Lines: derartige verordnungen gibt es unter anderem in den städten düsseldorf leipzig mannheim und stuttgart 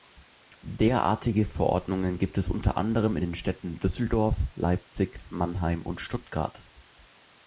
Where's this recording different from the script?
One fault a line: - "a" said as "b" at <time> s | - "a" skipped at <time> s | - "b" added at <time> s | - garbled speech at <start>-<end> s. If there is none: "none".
none